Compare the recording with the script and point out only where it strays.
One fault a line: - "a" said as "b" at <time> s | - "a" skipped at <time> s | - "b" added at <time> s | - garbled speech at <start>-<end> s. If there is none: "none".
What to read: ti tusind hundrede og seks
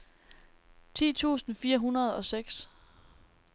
- "fire" added at 1.5 s